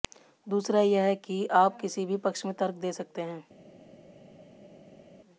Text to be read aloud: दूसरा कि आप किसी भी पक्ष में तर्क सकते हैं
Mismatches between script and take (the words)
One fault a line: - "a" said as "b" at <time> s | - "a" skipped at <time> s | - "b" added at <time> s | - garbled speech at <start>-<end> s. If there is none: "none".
- "यह" added at 0.8 s
- "दे" added at 2.8 s